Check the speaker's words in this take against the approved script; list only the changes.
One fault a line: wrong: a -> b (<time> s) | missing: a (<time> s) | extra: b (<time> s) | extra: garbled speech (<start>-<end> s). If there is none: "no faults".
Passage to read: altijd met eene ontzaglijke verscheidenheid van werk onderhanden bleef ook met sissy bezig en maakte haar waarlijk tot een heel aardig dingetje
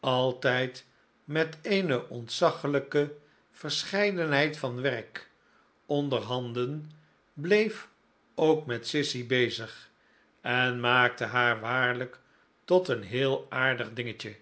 no faults